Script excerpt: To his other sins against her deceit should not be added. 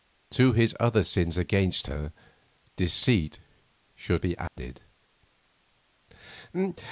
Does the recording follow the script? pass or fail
fail